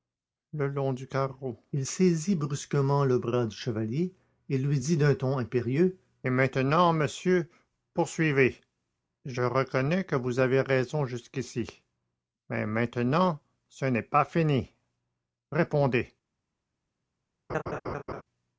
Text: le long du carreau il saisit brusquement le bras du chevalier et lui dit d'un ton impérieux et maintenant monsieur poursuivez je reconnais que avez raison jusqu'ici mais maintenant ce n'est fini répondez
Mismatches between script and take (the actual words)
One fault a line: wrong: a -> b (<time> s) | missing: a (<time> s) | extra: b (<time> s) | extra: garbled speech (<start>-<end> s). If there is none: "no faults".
extra: vous (10.2 s)
extra: pas (14.0 s)